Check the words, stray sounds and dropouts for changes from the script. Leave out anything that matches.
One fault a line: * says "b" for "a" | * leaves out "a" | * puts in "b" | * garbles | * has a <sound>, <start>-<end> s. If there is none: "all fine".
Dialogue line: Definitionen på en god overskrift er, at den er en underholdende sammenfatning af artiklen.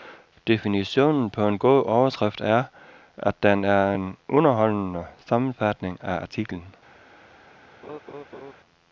* has a laugh, 7.8-8.5 s